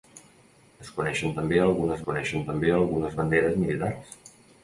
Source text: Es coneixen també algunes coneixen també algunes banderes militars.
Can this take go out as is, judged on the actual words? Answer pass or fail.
pass